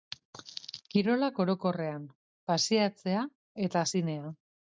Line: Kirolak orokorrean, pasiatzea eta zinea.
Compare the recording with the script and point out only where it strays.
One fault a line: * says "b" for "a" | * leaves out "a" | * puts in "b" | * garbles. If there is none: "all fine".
all fine